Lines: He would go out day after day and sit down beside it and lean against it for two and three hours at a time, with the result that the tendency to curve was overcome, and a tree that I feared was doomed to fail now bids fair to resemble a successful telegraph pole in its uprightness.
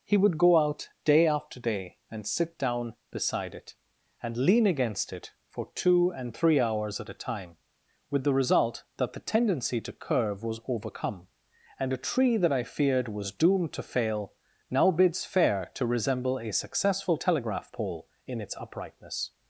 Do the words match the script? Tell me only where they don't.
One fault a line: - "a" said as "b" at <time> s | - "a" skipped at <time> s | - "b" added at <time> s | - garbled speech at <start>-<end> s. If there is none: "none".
none